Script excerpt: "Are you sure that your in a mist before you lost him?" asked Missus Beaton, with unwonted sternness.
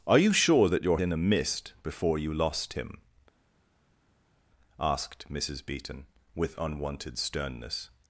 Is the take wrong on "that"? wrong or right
right